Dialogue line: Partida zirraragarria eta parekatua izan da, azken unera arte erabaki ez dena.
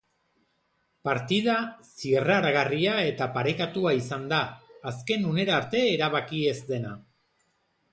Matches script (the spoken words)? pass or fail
pass